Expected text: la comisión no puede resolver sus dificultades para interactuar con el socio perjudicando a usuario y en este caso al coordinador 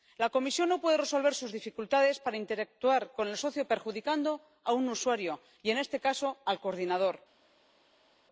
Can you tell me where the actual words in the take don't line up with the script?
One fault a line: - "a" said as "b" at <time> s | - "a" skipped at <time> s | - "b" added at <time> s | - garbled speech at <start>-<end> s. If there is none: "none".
- "un" added at 4.7 s